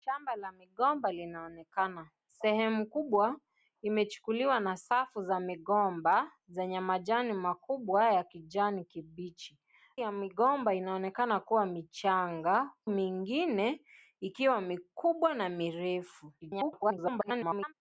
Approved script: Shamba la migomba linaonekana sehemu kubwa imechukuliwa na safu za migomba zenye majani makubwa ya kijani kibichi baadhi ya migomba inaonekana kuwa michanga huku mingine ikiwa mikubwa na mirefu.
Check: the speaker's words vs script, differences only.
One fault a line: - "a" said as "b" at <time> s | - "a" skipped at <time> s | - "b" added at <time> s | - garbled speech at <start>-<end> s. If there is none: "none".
- "baadhi" skipped at 9.6 s
- "huku" skipped at 12.7 s
- garbled speech at 16.4-17.7 s